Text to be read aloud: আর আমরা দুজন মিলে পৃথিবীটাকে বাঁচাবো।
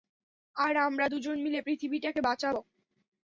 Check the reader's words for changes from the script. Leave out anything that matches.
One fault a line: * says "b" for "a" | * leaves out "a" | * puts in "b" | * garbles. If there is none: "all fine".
all fine